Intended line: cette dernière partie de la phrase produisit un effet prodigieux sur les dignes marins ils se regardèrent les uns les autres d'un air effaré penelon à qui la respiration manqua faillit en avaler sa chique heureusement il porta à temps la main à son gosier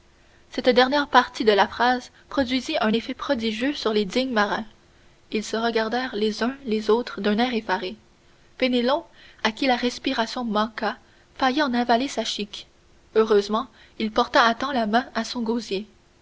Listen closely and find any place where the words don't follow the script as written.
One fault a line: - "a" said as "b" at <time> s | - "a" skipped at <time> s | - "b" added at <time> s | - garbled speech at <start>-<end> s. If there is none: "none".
none